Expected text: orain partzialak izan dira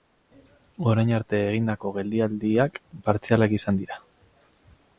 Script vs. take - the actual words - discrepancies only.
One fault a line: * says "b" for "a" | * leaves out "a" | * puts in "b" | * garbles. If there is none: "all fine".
* puts in "arte egindako geldialdiak"